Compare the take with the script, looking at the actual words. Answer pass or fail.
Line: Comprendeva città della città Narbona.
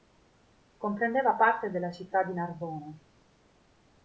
fail